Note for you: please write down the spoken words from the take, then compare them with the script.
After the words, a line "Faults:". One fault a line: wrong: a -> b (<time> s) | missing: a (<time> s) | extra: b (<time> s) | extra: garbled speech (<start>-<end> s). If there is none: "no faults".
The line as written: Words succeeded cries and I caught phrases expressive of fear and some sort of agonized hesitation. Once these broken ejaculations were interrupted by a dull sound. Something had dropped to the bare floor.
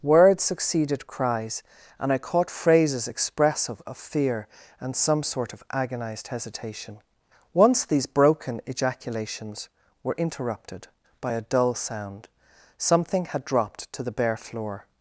Words succeeded cries and I caught phrases expressive of fear and some sort of agonized hesitation. Once these broken ejaculations were interrupted by a dull sound. Something had dropped to the bare floor.
Faults:
no faults